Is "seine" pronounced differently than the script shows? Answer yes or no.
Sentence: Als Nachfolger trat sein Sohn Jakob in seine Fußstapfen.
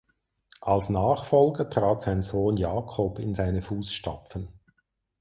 no